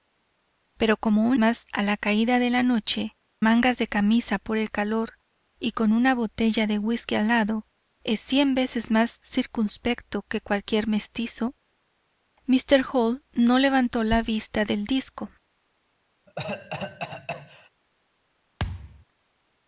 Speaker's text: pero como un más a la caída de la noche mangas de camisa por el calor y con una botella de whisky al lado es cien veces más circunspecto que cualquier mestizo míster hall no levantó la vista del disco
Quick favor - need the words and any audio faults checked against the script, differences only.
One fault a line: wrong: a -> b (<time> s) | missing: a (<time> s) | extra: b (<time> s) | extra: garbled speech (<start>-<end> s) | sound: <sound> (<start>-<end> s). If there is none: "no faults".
sound: cough (16.3-17.7 s)
sound: thud (18.6-19.1 s)